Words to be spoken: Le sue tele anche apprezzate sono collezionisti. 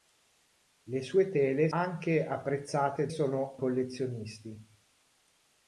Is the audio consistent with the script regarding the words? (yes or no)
yes